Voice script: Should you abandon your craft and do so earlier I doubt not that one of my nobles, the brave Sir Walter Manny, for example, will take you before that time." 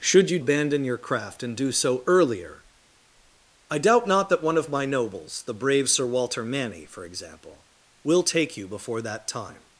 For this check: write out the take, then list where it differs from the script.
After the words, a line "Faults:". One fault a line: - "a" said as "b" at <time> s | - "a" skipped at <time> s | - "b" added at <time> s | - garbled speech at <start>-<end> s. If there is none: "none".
Should you abandon your craft and do so earlier I doubt not that one of my nobles, the brave Sir Walter Manny, for example, will take you before that time."
Faults:
none